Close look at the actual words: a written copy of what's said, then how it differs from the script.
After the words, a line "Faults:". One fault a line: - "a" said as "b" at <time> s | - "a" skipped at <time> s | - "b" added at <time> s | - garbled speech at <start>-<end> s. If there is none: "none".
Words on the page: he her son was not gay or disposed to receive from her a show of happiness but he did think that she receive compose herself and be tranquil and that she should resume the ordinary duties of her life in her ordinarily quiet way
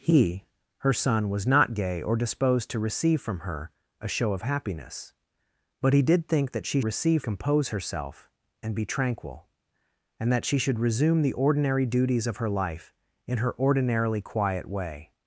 he her son was not gay or disposed to receive from her a show of happiness but he did think that she receive compose herself and be tranquil and that she should resume the ordinary duties of her life in her ordinarily quiet way
Faults:
none